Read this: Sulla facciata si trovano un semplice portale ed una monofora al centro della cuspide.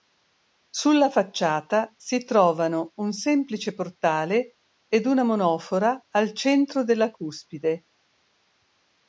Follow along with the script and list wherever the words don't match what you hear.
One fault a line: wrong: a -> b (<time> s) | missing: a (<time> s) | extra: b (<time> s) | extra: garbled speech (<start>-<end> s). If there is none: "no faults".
no faults